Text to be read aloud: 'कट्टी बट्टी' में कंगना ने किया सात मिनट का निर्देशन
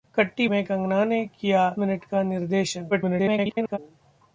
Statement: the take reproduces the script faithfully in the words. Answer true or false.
false